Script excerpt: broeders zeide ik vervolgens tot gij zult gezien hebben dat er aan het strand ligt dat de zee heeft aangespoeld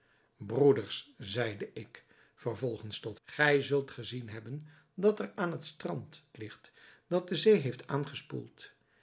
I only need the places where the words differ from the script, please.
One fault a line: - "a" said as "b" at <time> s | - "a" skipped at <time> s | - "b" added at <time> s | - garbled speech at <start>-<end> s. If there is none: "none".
none